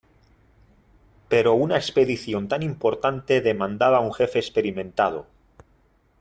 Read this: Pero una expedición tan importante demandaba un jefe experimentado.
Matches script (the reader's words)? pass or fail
pass